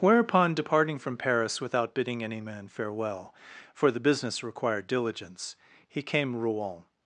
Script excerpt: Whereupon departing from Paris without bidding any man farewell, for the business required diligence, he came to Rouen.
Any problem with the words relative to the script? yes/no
yes